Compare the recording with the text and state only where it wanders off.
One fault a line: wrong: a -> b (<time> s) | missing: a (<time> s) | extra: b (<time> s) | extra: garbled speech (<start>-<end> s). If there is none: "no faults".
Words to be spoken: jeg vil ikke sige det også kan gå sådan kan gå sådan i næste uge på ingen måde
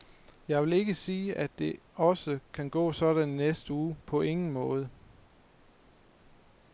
extra: at (1.4 s)
missing: kan gå sådan (3.3 s)